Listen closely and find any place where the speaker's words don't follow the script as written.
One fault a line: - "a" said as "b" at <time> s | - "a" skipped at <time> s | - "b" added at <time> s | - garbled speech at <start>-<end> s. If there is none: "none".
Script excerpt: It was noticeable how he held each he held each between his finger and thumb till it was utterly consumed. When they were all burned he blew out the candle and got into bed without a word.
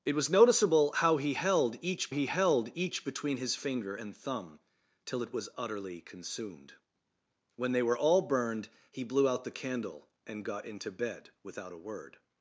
none